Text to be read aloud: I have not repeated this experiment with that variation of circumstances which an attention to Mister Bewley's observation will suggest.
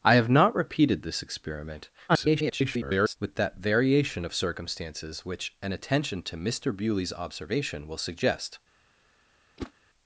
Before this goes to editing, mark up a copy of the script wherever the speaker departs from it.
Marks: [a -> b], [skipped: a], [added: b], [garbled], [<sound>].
I have not repeated this experiment [garbled] with that variation of circumstances which an attention to Mister Bewley's observation will suggest. [whoosh]